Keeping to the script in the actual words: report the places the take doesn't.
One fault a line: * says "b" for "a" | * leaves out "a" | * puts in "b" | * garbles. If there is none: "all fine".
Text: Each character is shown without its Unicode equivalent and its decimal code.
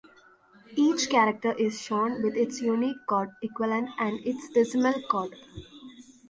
* says "with" for "without"